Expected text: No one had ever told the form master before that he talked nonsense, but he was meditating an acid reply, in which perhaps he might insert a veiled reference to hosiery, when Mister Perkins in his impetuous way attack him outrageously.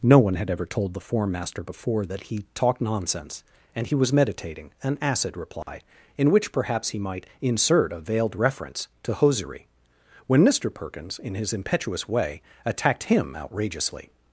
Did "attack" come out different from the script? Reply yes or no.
yes